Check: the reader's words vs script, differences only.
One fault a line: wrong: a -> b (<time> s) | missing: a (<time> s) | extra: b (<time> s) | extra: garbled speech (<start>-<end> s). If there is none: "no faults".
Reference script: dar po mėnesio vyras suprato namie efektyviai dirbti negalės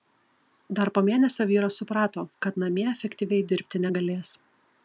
extra: kad (2.5 s)